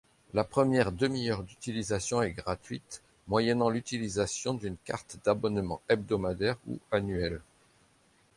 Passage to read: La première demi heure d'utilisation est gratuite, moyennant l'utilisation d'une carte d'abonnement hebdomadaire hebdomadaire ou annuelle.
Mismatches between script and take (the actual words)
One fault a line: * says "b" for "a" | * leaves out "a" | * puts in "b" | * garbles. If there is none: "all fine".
* leaves out "hebdomadaire"